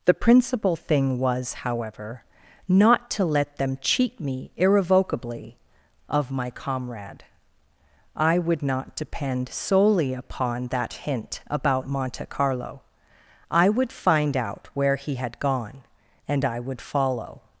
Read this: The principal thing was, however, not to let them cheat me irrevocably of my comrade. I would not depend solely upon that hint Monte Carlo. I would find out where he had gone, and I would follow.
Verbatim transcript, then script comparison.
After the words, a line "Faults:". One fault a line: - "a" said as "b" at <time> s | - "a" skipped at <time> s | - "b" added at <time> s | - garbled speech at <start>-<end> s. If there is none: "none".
The principal thing was, however, not to let them cheat me irrevocably of my comrade. I would not depend solely upon that hint about Monte Carlo. I would find out where he had gone, and I would follow.
Faults:
- "about" added at 11.5 s